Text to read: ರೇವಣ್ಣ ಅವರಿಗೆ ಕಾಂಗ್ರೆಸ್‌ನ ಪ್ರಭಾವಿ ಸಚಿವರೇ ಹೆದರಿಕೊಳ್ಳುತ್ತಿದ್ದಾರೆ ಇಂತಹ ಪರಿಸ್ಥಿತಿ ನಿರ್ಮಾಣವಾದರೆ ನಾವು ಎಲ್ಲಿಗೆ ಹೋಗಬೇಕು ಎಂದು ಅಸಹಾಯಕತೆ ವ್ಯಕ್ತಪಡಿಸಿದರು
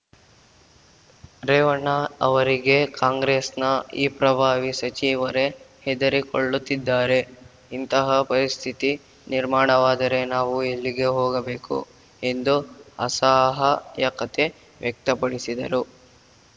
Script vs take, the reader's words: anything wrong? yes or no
yes